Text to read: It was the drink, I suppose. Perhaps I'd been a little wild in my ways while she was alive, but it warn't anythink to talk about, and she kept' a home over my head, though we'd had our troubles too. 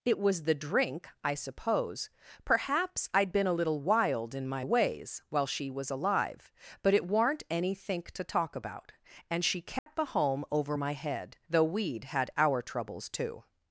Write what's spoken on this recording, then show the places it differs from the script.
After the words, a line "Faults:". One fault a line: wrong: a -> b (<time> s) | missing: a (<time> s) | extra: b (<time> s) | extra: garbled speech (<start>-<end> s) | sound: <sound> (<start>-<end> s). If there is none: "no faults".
It was the drink, I suppose. Perhaps I'd been a little wild in my ways while she was alive, but it warn't anythink to talk about, and she kept' a home over my head, though we'd had our troubles too.
Faults:
sound: dropout (9.8-9.9 s)